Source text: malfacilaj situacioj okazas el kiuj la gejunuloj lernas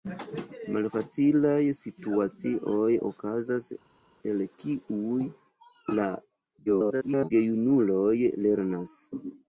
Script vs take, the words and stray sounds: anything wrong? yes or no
yes